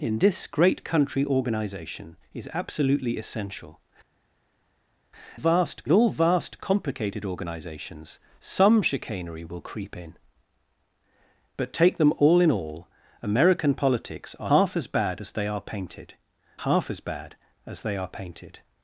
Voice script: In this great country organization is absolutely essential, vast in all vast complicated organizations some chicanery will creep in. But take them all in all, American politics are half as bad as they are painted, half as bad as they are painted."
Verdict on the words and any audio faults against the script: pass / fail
pass